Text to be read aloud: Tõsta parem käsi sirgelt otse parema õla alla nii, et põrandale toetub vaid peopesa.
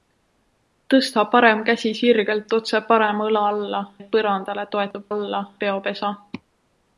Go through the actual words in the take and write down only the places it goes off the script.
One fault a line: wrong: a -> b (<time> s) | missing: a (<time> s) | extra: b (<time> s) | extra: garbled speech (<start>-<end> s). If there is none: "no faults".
missing: nii (3.8 s)
wrong: vaid -> alla (5.1 s)